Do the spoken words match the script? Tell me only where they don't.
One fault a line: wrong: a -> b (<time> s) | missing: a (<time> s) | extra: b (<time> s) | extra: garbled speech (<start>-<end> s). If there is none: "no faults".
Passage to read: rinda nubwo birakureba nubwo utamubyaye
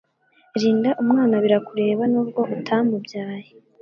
wrong: nubwo -> umwana (1.0 s)